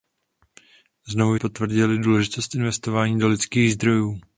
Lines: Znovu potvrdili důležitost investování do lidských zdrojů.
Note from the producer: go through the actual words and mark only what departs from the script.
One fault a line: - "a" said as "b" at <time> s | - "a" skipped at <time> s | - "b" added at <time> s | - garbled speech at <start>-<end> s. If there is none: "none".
none